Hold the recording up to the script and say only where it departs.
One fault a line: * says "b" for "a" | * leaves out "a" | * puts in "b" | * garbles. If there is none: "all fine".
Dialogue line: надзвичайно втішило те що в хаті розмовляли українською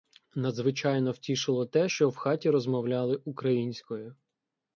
all fine